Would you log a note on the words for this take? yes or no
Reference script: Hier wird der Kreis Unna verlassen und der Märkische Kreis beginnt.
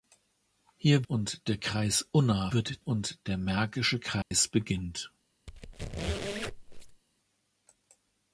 yes